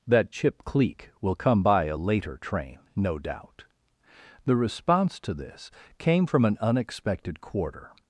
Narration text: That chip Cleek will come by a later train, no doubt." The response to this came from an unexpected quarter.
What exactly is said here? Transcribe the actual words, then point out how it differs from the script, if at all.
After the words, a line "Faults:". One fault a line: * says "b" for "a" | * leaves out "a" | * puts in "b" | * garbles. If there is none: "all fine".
That chip Cleek will come by a later train, no doubt." The response to this came from an unexpected quarter.
Faults:
all fine